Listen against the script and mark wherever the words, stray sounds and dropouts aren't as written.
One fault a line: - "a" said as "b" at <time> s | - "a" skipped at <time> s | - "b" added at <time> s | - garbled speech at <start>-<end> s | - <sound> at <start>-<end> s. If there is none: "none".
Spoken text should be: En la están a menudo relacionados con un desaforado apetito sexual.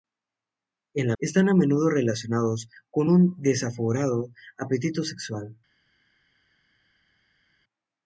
none